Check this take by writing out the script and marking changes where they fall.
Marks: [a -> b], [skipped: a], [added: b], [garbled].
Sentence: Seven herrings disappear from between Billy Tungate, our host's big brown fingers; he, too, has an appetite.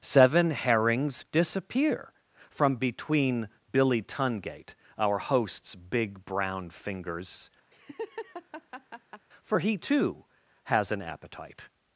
Seven herrings disappear from between Billy Tungate, our host's big brown fingers; [added: for] he, too, has an appetite.